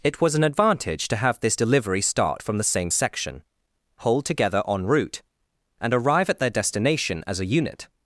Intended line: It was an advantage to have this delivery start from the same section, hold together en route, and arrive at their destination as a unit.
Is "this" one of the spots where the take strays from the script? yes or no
no